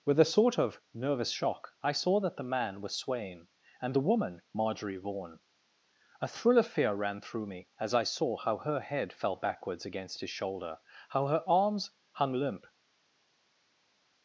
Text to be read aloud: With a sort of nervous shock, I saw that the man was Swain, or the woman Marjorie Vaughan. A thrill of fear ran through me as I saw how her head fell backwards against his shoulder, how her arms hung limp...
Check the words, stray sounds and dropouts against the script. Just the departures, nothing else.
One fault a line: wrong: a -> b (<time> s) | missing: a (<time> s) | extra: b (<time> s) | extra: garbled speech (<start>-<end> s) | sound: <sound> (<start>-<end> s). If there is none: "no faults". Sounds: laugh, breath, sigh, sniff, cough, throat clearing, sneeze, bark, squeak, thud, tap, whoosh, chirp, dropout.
wrong: or -> and (3.8 s)